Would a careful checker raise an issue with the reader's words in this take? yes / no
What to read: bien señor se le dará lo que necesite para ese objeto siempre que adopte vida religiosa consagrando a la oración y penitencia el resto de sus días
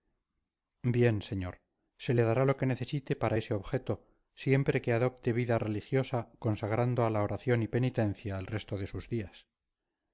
no